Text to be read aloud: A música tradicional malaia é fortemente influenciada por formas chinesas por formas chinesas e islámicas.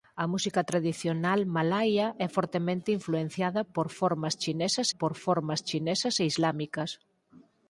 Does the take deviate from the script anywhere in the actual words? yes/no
no